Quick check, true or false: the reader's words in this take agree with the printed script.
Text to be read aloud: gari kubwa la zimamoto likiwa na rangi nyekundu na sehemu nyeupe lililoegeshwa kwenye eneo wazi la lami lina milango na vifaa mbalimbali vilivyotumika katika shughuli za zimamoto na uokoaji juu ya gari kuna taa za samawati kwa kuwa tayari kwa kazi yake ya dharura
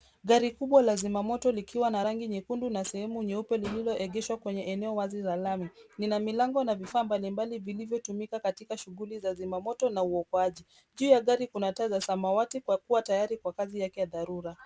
true